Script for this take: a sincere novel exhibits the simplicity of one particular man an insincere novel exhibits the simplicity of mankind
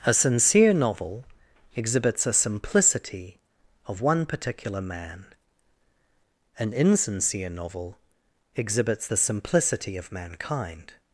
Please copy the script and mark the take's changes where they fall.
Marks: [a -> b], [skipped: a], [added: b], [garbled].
a sincere novel exhibits [the -> a] simplicity of one particular man an insincere novel exhibits the simplicity of mankind